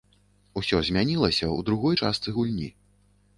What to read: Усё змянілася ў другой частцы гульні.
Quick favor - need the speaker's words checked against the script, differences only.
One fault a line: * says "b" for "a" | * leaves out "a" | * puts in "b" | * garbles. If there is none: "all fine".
all fine